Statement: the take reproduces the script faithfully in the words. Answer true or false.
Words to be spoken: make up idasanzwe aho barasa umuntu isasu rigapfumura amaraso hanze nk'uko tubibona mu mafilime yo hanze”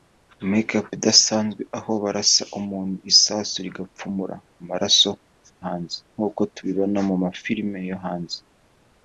true